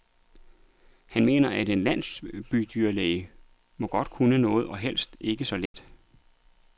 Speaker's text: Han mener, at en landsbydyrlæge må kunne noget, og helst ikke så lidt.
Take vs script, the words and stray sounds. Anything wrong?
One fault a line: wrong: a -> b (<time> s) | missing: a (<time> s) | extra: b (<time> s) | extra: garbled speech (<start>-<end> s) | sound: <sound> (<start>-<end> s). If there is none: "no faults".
sound: dropout (5.7-5.7 s)